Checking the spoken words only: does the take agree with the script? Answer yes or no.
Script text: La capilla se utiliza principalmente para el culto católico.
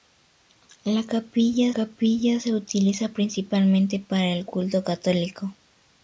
no